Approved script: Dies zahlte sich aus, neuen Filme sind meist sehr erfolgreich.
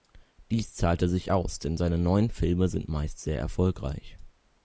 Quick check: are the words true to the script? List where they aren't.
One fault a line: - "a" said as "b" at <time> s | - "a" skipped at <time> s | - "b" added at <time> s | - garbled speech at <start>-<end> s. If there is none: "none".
- "denn seine" added at 1.6 s